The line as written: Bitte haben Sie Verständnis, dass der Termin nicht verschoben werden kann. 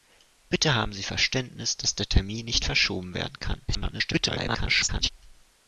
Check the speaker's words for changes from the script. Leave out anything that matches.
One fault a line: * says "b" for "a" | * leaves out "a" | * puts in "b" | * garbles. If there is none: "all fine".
* garbles